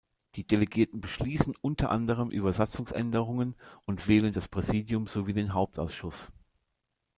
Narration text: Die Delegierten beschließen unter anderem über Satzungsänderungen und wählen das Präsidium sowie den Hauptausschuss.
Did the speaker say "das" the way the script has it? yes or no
yes